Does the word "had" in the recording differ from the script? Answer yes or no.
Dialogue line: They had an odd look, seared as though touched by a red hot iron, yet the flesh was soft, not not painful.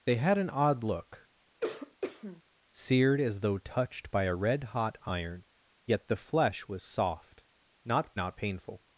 no